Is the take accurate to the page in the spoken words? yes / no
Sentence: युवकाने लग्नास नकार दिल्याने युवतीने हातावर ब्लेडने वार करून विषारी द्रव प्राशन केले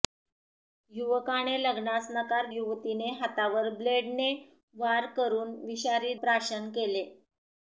no